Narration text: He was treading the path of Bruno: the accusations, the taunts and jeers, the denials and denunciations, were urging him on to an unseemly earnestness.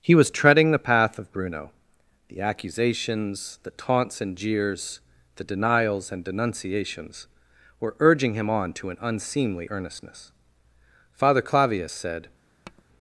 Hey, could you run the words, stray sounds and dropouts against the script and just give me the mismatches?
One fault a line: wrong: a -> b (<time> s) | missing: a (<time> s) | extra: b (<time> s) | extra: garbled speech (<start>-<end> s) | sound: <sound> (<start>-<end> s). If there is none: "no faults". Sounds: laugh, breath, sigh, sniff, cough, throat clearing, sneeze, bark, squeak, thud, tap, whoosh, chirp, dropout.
extra: Father Clavius said (11.1 s)
sound: tap (12.6-12.8 s)